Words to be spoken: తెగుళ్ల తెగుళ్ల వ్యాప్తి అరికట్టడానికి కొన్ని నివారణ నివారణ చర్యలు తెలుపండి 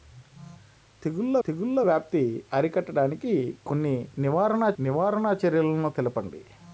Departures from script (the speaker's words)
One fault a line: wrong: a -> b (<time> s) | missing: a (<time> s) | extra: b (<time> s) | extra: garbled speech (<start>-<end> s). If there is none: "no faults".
no faults